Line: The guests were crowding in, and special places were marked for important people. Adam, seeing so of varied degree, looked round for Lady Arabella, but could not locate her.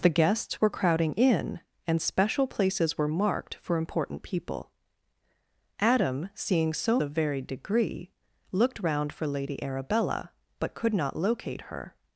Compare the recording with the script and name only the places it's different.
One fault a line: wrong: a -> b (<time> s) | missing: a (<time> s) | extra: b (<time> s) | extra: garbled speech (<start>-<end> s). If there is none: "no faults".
no faults